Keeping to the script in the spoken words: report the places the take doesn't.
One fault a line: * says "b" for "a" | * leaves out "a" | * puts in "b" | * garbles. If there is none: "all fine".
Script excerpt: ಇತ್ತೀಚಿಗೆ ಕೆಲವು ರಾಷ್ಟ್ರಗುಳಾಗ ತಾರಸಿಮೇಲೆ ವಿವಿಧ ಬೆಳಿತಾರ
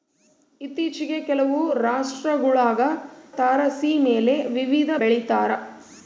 all fine